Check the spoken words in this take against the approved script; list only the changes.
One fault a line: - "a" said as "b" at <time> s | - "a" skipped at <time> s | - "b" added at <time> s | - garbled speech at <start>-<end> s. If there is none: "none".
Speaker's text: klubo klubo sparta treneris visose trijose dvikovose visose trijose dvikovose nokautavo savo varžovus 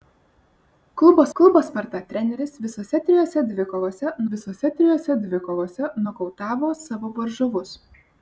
none